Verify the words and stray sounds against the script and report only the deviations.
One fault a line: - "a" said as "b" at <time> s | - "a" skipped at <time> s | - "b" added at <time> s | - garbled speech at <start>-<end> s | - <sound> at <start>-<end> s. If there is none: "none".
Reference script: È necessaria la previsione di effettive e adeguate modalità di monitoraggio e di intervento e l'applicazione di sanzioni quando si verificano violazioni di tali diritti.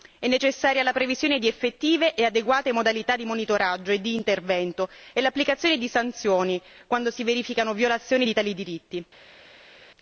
none